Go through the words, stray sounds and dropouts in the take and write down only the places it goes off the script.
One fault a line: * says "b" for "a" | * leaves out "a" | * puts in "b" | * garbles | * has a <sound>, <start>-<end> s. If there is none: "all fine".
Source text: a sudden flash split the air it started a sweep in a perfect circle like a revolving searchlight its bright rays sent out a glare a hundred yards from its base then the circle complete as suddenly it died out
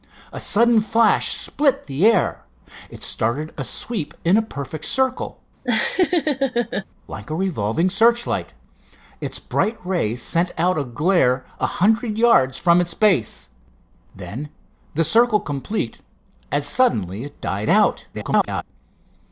* has a laugh, 5.6-6.9 s
* garbles